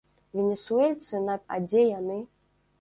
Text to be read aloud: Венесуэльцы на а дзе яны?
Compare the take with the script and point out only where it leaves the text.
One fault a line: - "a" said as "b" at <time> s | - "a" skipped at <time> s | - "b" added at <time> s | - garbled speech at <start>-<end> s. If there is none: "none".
none